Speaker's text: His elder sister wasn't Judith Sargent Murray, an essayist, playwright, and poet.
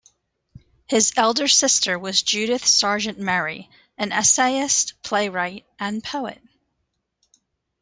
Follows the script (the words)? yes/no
no